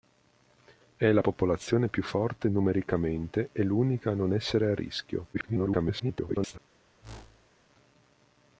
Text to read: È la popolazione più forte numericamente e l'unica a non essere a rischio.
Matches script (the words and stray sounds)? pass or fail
fail